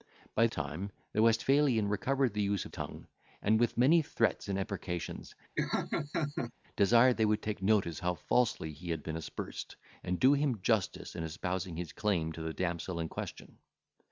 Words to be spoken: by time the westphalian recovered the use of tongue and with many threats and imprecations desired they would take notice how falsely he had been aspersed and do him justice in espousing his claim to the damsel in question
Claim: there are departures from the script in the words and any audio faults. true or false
true